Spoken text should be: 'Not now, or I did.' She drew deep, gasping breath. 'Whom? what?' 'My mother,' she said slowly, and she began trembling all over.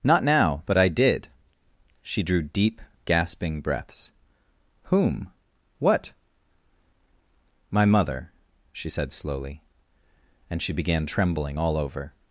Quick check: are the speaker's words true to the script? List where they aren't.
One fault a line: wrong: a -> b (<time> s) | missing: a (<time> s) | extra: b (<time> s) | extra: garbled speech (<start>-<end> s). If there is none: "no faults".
wrong: or -> but (0.7 s)
wrong: breath -> breaths (3.6 s)